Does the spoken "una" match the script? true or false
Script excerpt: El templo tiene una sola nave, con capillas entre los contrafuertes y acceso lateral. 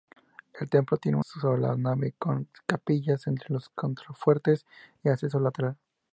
false